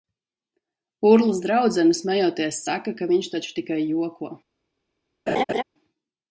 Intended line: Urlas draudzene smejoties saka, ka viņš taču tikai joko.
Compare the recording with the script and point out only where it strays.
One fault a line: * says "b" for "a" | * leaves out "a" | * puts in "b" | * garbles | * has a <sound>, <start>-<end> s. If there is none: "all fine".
* has a laugh, 5.3-5.6 s